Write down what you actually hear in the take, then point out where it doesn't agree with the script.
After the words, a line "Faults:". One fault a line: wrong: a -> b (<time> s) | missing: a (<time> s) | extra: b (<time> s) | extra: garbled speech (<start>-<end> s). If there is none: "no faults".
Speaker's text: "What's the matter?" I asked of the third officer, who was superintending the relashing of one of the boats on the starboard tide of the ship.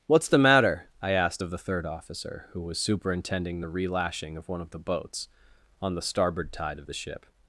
"What's the matter?" I asked of the third officer, who was superintending the relashing of one of the boats on the starboard tide of the ship.
Faults:
no faults